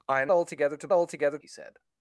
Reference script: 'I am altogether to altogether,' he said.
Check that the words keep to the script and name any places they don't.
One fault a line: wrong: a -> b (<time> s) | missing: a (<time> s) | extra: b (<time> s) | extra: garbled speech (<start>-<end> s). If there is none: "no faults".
no faults